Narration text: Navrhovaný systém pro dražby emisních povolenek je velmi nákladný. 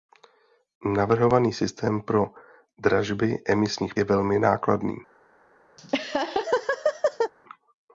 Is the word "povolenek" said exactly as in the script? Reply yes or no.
no